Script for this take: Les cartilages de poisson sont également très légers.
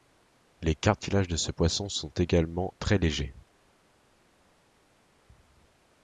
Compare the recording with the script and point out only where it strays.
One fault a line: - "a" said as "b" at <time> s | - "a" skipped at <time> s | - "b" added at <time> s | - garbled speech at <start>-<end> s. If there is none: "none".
- "ce" added at 1.4 s